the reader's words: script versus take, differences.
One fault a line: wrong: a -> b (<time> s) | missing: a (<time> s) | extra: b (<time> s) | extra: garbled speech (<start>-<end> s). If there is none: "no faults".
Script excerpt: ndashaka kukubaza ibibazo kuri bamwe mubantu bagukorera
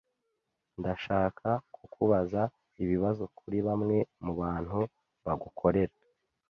no faults